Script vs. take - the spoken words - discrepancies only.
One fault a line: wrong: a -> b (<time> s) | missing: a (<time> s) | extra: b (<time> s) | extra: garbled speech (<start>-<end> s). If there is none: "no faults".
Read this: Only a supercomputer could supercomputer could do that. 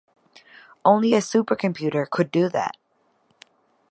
missing: supercomputer could (2.3 s)